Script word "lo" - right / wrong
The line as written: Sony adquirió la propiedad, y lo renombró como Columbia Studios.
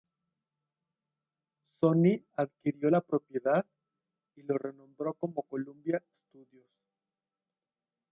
right